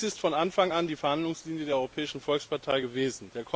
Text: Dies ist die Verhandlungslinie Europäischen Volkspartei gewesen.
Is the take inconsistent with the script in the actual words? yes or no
yes